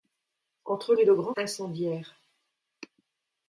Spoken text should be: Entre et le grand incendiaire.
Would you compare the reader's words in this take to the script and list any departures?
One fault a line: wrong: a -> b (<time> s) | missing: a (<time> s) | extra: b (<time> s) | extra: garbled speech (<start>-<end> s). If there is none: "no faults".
no faults